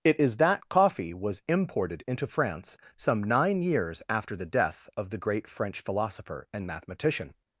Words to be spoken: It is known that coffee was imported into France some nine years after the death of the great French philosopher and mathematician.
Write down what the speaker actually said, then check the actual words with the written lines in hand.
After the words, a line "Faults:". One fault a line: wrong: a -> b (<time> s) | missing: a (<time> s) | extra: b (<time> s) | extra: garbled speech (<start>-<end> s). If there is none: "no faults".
It is that coffee was imported into France some nine years after the death of the great French philosopher and mathematician.
Faults:
missing: known (0.4 s)